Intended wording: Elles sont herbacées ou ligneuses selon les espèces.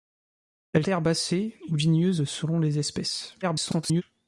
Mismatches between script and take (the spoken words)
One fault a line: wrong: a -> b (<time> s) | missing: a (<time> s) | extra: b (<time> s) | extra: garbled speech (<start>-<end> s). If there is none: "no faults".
missing: sont (0.8 s)
extra: garbled speech (3.4-4.0 s)